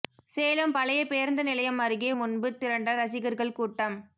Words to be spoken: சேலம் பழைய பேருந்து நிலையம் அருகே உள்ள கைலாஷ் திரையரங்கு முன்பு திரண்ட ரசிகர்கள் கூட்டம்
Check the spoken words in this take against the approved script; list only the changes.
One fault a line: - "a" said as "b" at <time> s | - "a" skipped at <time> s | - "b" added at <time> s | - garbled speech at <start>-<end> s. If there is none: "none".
- "உள்ள கைலாஷ் திரையரங்கு" skipped at 2.1 s